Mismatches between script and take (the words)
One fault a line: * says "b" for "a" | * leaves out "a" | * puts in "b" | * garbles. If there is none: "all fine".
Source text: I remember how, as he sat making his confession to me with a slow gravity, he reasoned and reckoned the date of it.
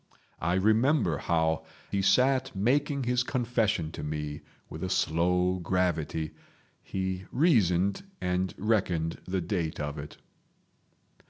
* leaves out "as"